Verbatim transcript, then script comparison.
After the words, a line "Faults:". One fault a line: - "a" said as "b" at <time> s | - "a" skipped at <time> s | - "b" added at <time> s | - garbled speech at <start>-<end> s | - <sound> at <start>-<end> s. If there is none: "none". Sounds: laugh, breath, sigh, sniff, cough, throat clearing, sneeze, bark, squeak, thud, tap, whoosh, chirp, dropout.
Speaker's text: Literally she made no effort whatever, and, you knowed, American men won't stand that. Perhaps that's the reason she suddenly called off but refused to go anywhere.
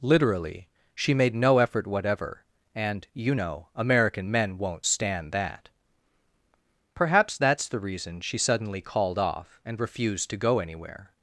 Literally she made no effort whatever, and, you know, American men won't stand that. Perhaps that's the reason she suddenly called off and refused to go anywhere.
Faults:
- "knowed" said as "know" at 3.3 s
- "but" said as "and" at 9.6 s